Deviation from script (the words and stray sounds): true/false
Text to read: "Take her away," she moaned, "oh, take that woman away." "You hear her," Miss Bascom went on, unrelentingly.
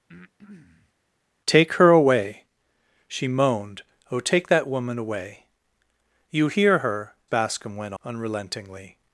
true